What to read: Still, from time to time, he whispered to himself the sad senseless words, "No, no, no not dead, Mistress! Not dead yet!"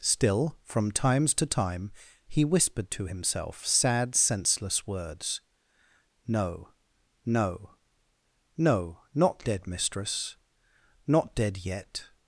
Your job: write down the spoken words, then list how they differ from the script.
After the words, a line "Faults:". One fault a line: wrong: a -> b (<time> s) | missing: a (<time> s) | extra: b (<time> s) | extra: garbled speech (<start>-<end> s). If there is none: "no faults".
Still, from times to time, he whispered to himself sad senseless words, "No, no, no not dead, Mistress! Not dead yet!"
Faults:
wrong: time -> times (0.9 s)
missing: the (3.6 s)